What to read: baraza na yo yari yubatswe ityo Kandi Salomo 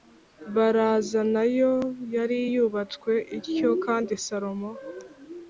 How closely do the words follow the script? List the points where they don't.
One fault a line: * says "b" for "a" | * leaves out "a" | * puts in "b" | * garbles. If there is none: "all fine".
all fine